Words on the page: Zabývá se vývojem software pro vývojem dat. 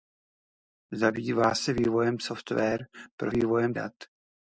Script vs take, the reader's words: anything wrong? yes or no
no